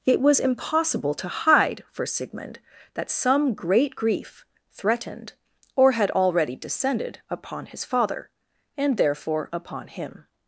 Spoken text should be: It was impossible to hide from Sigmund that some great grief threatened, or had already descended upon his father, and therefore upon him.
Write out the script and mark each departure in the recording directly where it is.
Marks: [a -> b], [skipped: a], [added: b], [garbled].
It was impossible to hide [from -> for] Sigmund that some great grief threatened, or had already descended upon his father, and therefore upon him.